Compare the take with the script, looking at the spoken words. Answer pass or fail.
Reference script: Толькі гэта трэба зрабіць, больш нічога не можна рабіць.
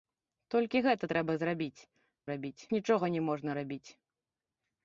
fail